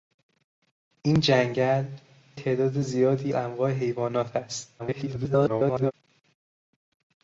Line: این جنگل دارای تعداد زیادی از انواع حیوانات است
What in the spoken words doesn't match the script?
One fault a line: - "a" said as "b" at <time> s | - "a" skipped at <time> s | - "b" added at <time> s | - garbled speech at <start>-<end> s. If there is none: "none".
- "دارای" skipped at 1.9 s
- "از" skipped at 3.3 s
- garbled speech at 4.8-5.9 s